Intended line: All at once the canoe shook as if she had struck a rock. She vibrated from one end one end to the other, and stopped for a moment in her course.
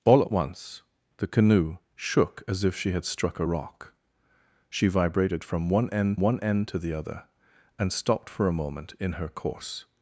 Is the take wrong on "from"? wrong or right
right